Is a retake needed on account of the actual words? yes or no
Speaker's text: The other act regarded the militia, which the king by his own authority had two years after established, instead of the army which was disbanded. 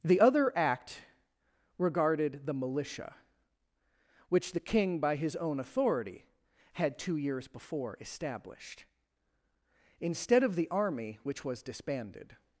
yes